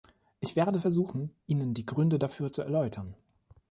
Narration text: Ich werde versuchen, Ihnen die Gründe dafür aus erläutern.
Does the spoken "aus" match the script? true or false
false